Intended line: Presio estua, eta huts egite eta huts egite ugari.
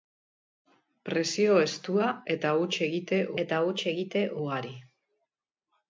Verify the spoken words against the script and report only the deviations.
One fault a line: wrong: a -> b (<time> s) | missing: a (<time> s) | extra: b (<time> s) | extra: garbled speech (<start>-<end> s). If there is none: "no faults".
no faults